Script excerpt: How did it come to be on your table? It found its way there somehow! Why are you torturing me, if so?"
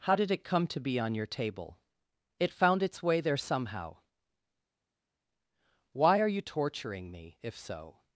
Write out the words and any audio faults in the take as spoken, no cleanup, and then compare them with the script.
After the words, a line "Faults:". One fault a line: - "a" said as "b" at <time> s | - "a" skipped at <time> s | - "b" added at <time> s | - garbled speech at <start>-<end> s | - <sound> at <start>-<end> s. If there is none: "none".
How did it come to be on your table? It found its way there somehow! Why are you torturing me, if so?"
Faults:
none